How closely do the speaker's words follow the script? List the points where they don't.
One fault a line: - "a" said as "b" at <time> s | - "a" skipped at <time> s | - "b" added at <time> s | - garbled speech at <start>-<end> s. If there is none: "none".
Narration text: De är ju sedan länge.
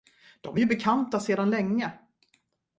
- "bekanta" added at 0.6 s